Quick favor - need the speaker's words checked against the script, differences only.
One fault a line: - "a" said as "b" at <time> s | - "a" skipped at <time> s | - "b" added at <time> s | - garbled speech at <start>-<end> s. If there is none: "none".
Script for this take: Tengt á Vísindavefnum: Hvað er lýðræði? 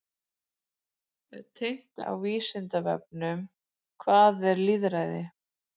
none